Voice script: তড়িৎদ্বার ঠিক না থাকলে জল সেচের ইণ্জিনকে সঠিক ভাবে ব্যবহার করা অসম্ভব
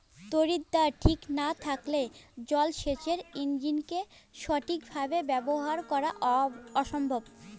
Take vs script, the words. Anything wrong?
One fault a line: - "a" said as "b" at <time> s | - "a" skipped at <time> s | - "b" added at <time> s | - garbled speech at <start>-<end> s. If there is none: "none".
none